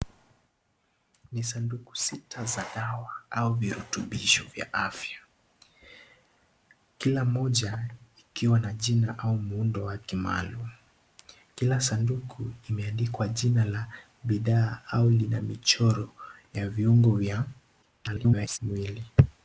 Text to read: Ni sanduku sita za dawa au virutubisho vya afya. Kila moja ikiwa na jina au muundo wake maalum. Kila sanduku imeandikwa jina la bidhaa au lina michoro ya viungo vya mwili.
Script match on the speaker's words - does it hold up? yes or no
no